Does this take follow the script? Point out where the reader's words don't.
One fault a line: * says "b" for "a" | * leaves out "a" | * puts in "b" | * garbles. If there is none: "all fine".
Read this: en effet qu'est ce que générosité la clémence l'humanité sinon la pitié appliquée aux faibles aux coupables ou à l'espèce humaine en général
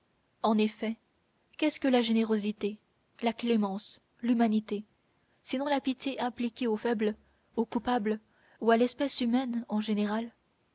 * puts in "la"